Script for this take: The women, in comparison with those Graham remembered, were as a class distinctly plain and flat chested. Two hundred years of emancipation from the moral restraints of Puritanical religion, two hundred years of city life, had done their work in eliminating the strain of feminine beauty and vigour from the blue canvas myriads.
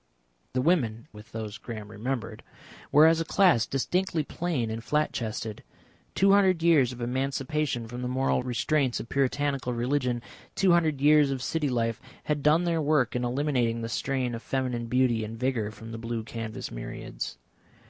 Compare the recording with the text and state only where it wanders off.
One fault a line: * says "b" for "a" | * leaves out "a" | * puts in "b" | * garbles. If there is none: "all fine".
* leaves out "in comparison"